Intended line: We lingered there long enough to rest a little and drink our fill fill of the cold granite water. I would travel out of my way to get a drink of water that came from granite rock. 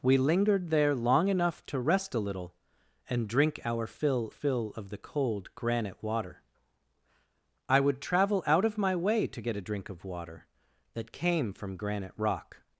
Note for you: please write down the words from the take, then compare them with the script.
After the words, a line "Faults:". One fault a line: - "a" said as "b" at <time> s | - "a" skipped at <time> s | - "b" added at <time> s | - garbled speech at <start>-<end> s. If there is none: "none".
We lingered there long enough to rest a little and drink our fill fill of the cold granite water. I would travel out of my way to get a drink of water that came from granite rock.
Faults:
none